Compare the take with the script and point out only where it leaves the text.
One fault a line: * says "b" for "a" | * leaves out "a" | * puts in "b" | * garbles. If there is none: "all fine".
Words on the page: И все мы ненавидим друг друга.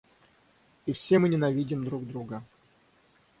all fine